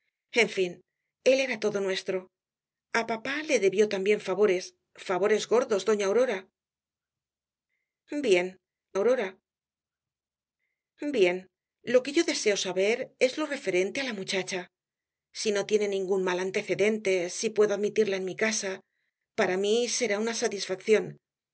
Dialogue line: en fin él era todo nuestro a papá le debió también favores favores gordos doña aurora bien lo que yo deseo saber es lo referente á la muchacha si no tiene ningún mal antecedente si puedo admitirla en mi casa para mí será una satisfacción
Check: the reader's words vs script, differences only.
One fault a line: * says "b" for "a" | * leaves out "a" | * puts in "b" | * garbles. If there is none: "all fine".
* puts in "aurora bien"